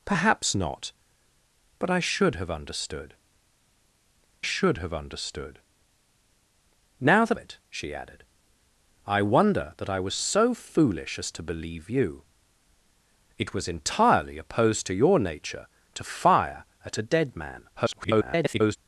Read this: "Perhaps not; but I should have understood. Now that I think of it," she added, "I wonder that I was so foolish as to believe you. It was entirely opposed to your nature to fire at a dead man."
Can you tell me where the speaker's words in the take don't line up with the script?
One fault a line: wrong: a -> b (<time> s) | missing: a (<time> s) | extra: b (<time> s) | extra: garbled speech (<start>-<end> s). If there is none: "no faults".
wrong: Now that I think of -> should have understood Now that (4.4 s)
extra: garbled speech (17.7-18.8 s)